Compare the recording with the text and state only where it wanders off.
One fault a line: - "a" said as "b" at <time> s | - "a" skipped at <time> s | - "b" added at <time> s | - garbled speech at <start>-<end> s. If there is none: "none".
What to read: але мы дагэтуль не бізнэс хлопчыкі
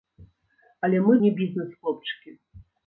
- "дагэтуль" skipped at 1.1 s